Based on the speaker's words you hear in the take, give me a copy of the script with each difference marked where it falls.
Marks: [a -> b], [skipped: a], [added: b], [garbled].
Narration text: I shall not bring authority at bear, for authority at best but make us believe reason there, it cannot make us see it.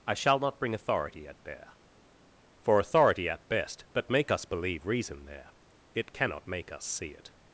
I shall not bring authority at bear, for authority at best but make us believe reason there, it cannot make us see it.